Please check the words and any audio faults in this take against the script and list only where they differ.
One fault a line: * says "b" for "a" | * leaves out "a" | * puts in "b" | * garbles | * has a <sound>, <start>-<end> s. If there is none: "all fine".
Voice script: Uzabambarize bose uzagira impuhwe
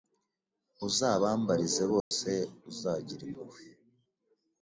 * has a dropout, 2.0-2.1 s